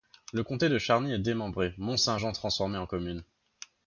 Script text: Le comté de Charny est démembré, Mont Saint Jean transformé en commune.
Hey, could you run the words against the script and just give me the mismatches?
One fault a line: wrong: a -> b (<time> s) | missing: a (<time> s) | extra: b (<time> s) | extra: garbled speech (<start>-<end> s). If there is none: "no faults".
no faults